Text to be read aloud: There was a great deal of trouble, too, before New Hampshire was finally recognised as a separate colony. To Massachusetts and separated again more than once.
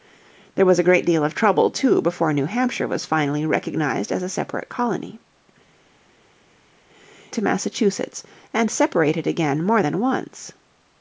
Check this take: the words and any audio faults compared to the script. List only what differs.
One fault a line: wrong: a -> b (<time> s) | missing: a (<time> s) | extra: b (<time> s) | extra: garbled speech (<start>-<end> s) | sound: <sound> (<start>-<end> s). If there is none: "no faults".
no faults